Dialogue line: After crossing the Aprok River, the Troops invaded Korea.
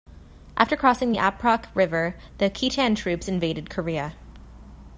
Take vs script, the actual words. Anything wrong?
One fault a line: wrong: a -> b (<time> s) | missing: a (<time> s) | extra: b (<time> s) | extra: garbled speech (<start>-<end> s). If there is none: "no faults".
extra: Khitan (2.5 s)